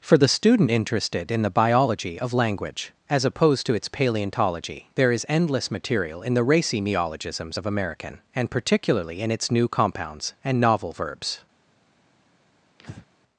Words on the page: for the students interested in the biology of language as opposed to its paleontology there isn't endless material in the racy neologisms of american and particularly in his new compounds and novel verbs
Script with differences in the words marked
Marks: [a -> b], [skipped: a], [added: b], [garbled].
for the [students -> student] interested in the biology of language as opposed to its paleontology there [isn't -> is] endless material in the racy neologisms of american and particularly in [his -> its] new compounds and novel verbs